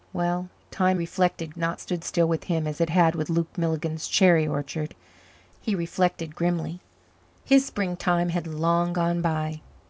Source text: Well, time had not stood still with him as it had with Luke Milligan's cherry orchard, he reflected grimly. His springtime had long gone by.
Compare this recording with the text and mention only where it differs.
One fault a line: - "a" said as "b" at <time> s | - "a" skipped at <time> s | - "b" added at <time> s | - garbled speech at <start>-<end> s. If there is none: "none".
- "had" said as "reflected" at 0.9 s